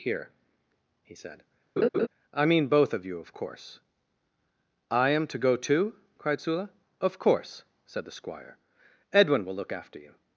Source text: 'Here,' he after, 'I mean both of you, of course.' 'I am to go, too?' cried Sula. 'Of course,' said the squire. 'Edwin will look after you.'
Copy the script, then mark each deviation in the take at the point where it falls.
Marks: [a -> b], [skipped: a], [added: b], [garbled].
'Here,' he [after, -> said] 'I mean both of you, of course.' 'I am to go, too?' cried Sula. 'Of course,' said the squire. 'Edwin will look after you.'